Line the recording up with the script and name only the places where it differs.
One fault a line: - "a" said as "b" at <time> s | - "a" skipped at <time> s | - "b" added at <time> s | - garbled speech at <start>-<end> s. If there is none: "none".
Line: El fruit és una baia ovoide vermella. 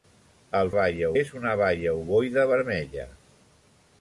- "fruit" said as "baia" at 0.8 s